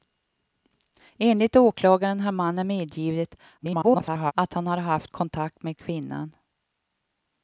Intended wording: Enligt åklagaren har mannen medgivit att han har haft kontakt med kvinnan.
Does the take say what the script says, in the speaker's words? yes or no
no